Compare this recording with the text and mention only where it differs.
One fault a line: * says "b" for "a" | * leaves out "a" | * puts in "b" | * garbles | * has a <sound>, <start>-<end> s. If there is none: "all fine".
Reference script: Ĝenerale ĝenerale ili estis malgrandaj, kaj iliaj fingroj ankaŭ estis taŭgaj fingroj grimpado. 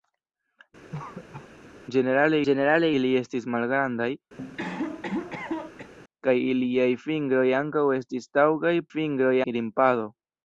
* has a cough, 0.9-1.5 s
* has a cough, 4.4-5.9 s